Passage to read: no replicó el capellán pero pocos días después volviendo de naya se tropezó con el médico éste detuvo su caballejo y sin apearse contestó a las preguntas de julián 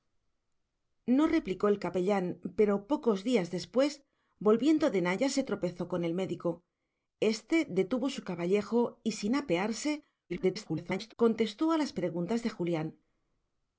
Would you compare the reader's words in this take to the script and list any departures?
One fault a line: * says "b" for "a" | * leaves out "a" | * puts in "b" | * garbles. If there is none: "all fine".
* garbles